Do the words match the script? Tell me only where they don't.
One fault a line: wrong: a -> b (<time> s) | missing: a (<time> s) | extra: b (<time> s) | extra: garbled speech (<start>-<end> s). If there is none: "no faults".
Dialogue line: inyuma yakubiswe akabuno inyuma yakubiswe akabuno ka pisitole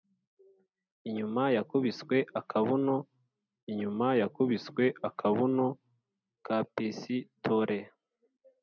no faults